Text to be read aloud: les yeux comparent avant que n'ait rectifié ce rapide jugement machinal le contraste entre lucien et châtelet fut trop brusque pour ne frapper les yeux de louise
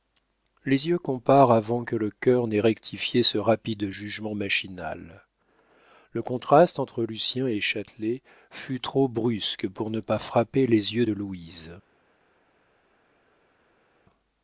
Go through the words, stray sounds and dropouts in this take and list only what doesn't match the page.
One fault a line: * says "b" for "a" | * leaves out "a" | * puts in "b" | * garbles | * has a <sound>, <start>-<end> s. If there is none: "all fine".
* puts in "le cœur"
* puts in "pas"